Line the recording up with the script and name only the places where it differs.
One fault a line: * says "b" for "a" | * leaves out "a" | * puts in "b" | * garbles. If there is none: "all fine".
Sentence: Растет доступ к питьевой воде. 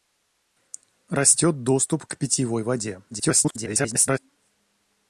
* garbles